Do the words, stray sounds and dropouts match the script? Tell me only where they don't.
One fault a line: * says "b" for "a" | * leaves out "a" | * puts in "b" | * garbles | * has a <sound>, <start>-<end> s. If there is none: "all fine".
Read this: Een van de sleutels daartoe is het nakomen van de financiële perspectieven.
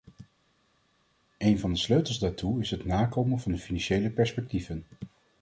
all fine